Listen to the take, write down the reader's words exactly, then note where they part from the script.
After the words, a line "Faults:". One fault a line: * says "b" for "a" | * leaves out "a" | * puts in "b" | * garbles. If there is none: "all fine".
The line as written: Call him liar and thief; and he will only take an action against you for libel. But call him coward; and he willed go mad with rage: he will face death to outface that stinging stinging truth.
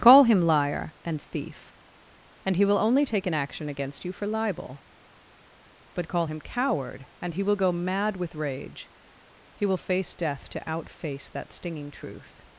Call him liar and thief; and he will only take an action against you for libel. But call him coward; and he will go mad with rage: he will face death to outface that stinging truth.
Faults:
* says "will" for "willed"
* leaves out "stinging"